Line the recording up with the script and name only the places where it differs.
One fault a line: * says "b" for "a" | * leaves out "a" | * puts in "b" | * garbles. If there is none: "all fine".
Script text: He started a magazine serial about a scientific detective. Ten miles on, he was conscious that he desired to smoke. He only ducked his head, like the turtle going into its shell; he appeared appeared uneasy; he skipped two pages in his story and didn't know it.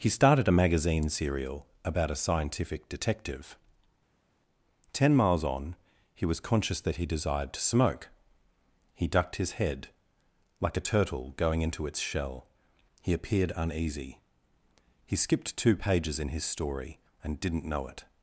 * leaves out "only"
* says "a" for "the"
* leaves out "appeared"